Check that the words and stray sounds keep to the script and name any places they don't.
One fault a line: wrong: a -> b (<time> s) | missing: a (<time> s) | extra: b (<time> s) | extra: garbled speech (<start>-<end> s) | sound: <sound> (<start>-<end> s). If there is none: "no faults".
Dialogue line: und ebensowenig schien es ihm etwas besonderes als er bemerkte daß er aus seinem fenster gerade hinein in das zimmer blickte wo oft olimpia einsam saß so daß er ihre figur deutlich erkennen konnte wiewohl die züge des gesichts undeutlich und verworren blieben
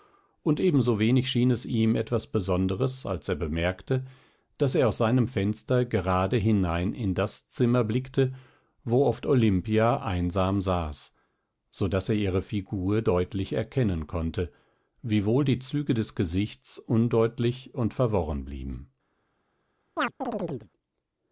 sound: chirp (20.0-20.7 s)